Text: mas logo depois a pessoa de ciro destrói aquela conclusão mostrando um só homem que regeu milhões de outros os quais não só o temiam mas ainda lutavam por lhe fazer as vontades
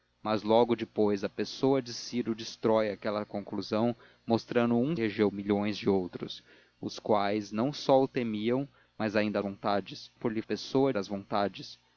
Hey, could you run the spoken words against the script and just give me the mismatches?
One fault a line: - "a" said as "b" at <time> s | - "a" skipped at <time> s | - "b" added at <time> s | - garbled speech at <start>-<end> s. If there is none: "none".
- "só homem que" skipped at 5.0 s
- "lutavam" said as "vontades" at 9.4 s
- "fazer" said as "pessoa" at 10.4 s